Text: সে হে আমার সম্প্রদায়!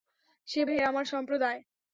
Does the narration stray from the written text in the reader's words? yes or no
no